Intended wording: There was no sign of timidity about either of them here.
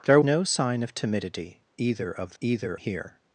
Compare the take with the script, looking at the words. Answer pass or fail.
fail